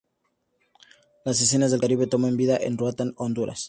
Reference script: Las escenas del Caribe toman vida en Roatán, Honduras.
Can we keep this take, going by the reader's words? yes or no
yes